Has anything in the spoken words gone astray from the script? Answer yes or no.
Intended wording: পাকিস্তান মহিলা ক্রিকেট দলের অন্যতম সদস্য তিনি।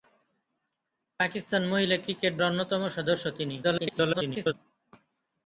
yes